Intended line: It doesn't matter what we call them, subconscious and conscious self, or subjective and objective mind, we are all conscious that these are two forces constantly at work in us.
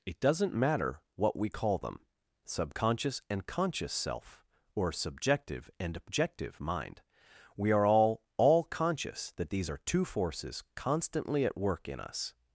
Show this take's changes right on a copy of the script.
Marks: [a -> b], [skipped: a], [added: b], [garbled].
It doesn't matter what we call them, subconscious and conscious self, or subjective and objective mind, we are all [added: all] conscious that these are two forces constantly at work in us.